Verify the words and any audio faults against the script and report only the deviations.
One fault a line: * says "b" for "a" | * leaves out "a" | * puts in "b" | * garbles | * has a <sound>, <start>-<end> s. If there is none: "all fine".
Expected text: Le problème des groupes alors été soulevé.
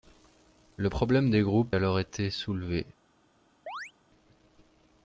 * has a chirp, 3.7-3.9 s